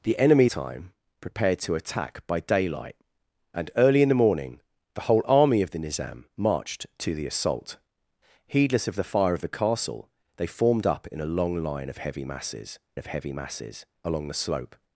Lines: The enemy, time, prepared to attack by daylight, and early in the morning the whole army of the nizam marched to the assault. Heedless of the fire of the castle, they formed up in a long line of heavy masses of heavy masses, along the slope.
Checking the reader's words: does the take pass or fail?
pass